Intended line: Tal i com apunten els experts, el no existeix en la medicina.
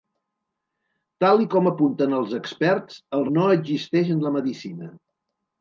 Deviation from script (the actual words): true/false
false